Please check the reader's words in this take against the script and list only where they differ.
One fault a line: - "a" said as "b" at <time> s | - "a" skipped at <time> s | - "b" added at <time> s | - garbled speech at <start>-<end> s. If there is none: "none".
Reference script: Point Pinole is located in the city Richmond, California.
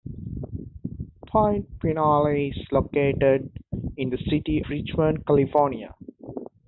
none